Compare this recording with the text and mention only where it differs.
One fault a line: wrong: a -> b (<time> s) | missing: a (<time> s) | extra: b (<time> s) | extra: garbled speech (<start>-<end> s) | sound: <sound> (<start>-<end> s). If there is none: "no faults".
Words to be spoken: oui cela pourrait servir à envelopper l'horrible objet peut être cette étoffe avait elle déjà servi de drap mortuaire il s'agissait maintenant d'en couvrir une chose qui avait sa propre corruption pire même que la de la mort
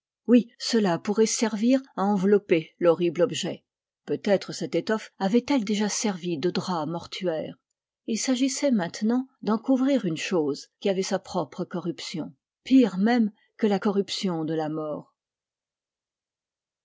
extra: corruption (13.7 s)